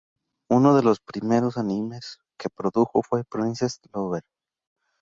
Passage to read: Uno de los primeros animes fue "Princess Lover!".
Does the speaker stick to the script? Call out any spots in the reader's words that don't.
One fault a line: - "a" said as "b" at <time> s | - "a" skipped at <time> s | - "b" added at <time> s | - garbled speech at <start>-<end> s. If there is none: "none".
- "que produjo" added at 2.4 s